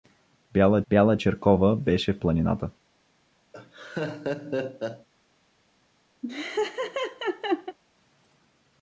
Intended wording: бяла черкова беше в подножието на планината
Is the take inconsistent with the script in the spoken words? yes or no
yes